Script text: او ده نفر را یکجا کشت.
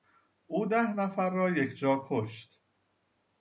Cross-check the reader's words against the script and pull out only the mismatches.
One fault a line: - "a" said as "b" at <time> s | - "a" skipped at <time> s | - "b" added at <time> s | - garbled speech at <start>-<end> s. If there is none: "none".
none